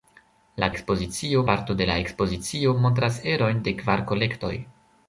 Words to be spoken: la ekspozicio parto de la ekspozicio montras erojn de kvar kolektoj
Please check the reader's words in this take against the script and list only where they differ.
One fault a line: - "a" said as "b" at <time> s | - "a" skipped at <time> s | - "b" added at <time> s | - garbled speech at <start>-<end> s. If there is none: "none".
none